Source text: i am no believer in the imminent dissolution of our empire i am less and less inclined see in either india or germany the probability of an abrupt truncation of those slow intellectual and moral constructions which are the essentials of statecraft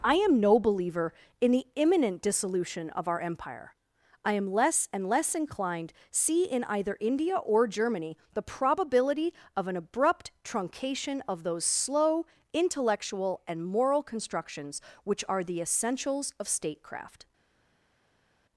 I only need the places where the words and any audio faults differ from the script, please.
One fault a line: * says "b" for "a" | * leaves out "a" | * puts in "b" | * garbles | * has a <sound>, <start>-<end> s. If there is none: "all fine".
all fine